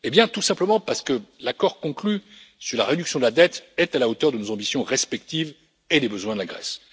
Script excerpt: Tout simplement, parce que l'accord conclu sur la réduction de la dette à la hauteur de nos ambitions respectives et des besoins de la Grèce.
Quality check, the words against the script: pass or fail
fail